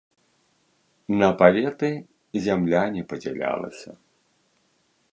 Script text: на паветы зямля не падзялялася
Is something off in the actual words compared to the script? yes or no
no